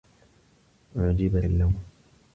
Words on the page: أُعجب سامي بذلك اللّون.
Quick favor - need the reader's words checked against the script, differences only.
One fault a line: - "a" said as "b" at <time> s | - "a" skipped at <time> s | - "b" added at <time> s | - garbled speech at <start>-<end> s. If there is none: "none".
- "سامي بذلك" skipped at 1.4 s